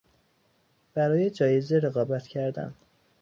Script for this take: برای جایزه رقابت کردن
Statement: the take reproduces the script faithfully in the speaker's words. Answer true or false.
true